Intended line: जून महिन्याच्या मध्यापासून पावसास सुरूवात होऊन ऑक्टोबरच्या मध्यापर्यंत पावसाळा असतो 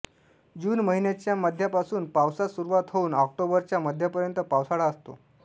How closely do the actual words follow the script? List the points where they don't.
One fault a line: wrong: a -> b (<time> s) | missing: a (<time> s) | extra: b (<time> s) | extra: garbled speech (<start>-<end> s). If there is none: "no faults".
no faults